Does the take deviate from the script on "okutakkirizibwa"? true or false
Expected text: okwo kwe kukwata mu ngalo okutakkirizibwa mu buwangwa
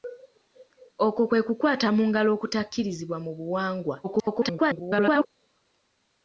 false